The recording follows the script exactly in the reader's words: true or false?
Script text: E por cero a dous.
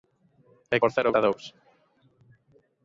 true